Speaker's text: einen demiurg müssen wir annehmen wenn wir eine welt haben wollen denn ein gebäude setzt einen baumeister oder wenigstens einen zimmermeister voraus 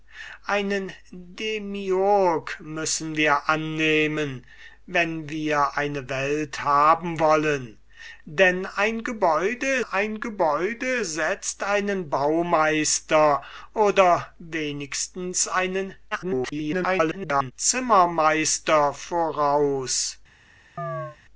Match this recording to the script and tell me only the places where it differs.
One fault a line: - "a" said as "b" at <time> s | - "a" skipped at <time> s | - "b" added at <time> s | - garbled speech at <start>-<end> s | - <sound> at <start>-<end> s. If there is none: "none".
- "ein gebäude" added at 9.8 s
- garbled speech at 16.1-17.5 s
- chirp at 20.8-21.2 s